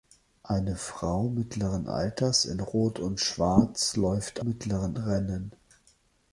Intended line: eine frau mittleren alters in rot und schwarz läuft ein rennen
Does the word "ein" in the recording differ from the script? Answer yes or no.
yes